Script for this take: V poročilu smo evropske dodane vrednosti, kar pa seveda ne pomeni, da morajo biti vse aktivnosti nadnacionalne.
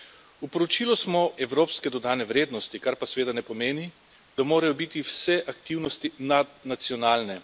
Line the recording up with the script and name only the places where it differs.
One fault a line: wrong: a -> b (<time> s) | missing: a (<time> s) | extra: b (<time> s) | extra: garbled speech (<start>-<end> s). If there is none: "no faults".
no faults